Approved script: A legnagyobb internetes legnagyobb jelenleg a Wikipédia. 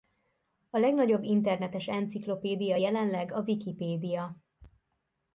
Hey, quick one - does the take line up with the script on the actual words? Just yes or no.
no